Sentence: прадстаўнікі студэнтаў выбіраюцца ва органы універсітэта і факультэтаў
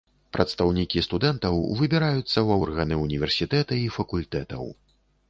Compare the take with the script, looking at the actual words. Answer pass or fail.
pass